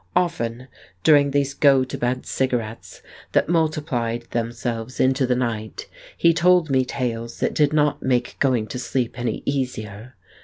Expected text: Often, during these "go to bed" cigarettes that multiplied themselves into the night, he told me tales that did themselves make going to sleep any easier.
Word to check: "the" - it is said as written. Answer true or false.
true